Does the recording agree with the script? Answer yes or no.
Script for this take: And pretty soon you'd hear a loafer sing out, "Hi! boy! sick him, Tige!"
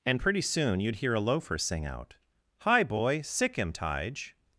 yes